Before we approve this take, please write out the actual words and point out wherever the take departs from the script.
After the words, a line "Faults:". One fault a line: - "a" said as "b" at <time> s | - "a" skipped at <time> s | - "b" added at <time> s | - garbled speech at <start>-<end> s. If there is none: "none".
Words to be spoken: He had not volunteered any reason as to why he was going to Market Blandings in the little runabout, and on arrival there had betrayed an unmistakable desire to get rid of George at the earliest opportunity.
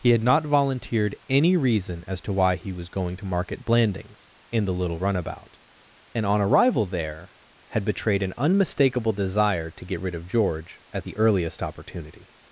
He had not volunteered any reason as to why he was going to Market Blandings in the little runabout, and on arrival there had betrayed an unmistakable desire to get rid of George at the earliest opportunity.
Faults:
none